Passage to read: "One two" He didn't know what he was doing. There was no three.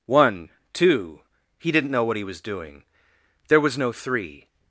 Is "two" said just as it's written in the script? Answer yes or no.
yes